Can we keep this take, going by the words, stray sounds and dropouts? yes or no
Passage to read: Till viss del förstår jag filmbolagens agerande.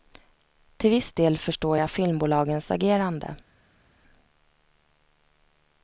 yes